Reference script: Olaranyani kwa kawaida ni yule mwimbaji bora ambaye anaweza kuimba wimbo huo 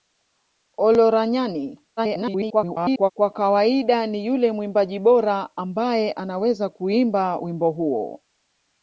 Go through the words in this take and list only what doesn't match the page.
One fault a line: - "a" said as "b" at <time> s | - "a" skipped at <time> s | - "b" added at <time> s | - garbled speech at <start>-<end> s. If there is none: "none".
- garbled speech at 2.0-3.1 s